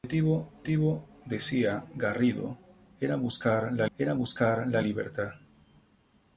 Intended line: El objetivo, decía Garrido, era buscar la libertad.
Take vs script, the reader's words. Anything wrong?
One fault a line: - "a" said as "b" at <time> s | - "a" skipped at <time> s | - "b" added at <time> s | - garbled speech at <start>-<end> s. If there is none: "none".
- "objetivo" added at 0.6 s
- "era buscar la" added at 4.0 s